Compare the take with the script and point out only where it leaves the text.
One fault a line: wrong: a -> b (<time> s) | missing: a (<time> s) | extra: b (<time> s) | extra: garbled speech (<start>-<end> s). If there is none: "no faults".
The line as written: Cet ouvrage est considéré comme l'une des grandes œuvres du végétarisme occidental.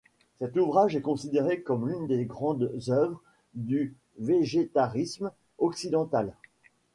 no faults